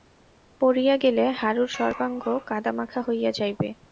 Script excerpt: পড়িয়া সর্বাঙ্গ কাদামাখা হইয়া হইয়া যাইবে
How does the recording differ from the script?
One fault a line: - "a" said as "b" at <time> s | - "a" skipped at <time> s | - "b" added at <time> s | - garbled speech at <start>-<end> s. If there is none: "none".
- "গেলে হারুর" added at 1.0 s
- "হইয়া" skipped at 3.3 s